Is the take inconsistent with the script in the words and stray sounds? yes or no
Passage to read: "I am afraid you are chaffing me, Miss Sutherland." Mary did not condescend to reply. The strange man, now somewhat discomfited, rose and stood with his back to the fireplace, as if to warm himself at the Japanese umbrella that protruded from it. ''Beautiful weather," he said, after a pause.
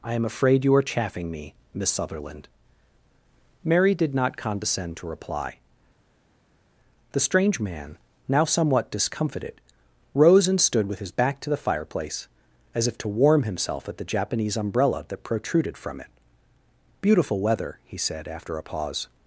no